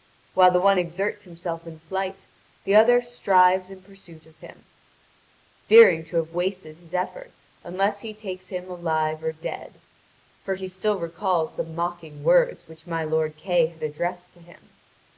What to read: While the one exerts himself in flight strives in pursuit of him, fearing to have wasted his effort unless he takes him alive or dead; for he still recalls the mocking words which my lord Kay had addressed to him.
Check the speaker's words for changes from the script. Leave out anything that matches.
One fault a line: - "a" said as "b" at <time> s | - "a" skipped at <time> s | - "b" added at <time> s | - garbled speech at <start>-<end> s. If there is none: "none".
- "the other" added at 2.6 s